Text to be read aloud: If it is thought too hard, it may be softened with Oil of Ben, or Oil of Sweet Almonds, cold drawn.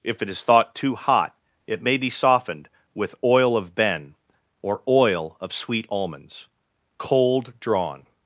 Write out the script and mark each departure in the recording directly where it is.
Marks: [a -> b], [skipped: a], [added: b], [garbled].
If it is thought too [hard, -> hot] it may be softened with Oil of Ben, or Oil of Sweet Almonds, cold drawn.